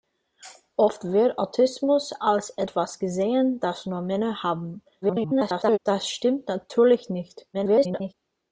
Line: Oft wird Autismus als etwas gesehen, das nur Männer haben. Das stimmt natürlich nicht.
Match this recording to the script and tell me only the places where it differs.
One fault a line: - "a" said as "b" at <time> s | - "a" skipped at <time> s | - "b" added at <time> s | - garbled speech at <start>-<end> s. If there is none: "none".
- garbled speech at 5.0-5.8 s
- garbled speech at 7.5-8.1 s